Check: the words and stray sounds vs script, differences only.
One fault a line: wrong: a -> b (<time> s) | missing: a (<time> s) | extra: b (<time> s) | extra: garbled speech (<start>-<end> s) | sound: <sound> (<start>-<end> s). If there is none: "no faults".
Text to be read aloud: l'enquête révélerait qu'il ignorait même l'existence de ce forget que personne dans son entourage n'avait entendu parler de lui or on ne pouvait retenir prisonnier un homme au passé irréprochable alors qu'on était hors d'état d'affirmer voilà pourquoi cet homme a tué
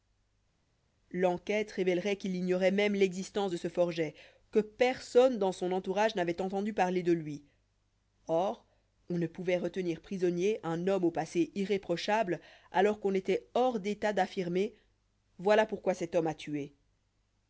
no faults